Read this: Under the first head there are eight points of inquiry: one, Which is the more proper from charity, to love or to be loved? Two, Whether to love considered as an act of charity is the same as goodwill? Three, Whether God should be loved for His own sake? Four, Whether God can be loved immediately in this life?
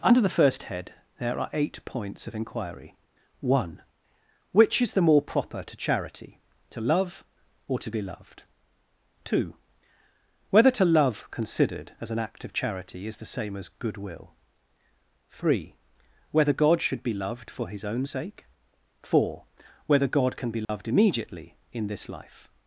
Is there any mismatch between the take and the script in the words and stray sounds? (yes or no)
yes